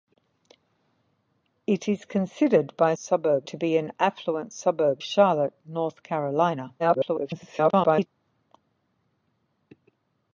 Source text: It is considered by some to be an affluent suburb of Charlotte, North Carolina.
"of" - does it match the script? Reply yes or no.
no